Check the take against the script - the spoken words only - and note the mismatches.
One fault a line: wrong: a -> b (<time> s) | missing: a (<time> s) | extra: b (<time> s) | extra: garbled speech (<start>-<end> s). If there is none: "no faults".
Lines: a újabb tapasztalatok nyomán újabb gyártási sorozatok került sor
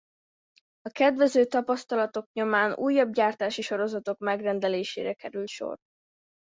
wrong: újabb -> kedvező (0.9 s)
extra: megrendelésére (4.2 s)